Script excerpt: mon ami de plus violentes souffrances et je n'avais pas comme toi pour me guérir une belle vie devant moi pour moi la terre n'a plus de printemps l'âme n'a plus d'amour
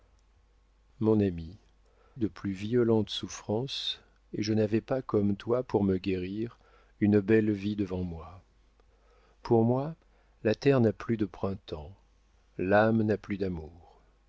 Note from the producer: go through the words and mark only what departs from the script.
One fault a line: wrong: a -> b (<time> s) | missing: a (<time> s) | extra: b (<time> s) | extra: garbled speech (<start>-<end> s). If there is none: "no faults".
no faults